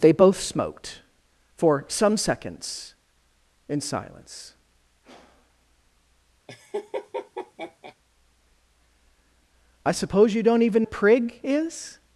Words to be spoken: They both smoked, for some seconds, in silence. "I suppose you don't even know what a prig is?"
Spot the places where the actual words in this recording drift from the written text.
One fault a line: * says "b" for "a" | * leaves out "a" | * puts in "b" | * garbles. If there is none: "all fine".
* leaves out "know what"